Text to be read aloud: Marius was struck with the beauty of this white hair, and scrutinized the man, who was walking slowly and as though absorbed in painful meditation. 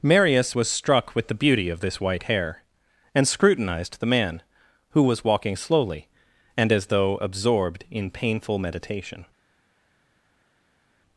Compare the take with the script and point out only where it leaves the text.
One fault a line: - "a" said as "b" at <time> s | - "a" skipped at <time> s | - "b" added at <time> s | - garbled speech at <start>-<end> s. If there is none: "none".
none